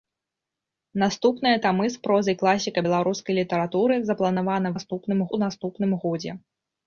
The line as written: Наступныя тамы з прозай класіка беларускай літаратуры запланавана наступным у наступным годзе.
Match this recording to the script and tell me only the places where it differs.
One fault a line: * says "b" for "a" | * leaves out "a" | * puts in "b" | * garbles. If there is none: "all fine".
all fine